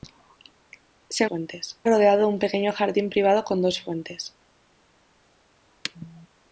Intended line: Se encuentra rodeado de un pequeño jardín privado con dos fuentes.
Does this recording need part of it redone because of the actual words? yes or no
yes